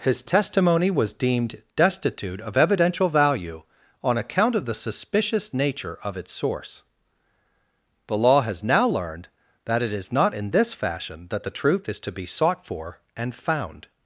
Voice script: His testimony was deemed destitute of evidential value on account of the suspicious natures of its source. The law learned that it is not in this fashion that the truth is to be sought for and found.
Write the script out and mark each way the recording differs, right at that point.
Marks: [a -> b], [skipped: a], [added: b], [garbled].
His testimony was deemed destitute of evidential value on account of the suspicious [natures -> nature] of its source. The law [added: has now] learned that it is not in this fashion that the truth is to be sought for and found.